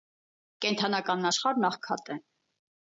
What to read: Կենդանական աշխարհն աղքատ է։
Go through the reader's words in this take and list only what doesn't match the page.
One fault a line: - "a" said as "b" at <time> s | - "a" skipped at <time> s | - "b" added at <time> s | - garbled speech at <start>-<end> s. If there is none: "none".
none